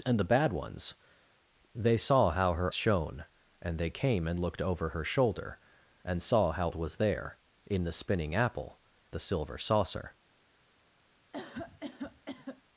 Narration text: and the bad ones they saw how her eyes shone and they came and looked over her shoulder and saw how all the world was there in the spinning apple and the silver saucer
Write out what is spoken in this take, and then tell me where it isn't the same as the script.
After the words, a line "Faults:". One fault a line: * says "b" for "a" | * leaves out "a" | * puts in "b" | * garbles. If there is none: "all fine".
and the bad ones they saw how her shone and they came and looked over her shoulder and saw how was there in the spinning apple the silver saucer
Faults:
* leaves out "eyes"
* leaves out "all the world"
* leaves out "and"